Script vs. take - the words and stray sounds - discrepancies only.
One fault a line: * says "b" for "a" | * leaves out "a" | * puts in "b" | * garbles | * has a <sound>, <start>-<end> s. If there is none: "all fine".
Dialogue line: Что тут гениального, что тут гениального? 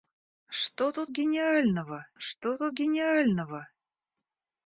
all fine